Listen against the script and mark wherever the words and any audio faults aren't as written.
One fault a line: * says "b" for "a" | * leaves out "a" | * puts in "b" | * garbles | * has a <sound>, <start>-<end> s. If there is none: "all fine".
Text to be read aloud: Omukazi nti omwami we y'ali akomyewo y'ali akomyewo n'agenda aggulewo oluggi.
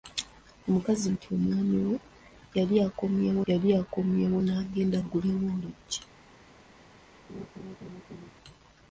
* has a laugh, 7.3-8.3 s